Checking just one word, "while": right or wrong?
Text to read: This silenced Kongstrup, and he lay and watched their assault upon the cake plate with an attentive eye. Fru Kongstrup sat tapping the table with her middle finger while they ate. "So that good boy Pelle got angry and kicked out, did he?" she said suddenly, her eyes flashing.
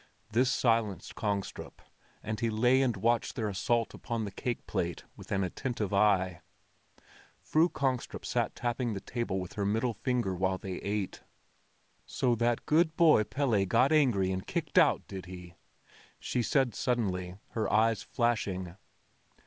right